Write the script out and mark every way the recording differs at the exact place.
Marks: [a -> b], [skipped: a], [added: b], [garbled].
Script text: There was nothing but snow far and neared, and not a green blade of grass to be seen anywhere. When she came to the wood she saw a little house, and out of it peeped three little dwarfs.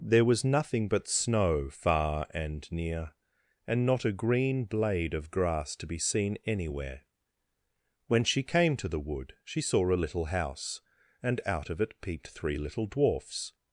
There was nothing but snow far and [neared, -> near] and not a green blade of grass to be seen anywhere. When she came to the wood she saw a little house, and out of it peeped three little dwarfs.